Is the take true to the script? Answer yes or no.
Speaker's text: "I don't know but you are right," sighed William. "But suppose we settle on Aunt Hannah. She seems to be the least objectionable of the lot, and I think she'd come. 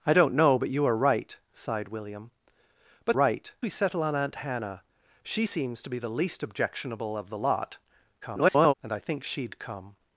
no